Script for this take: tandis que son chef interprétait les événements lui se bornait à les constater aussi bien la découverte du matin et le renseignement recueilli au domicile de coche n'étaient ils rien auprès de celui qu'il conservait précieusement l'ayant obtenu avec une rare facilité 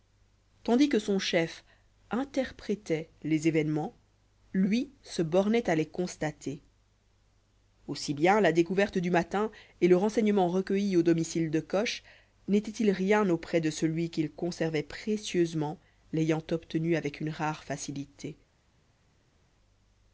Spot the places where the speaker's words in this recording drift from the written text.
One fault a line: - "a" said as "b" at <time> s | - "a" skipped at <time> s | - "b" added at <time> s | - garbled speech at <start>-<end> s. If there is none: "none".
none